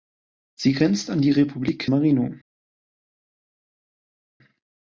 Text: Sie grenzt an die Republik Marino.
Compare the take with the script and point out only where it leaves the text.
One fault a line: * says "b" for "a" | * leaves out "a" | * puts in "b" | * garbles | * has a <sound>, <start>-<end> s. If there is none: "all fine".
all fine